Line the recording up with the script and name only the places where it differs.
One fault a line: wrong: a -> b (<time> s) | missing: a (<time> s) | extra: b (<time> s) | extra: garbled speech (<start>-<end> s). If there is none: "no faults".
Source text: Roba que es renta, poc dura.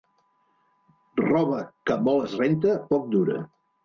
extra: molt (2.1 s)